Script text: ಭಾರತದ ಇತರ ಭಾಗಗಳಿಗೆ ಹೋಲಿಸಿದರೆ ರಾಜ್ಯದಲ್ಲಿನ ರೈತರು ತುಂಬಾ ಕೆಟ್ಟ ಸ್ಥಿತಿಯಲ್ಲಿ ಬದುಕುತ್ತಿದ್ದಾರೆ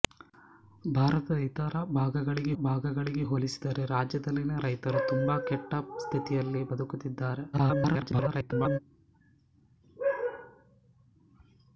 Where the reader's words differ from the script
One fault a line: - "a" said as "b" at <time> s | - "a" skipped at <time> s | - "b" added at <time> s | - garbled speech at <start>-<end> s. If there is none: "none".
- "ಭಾಗಗಳಿಗೆ" added at 2.6 s
- garbled speech at 7.5-8.8 s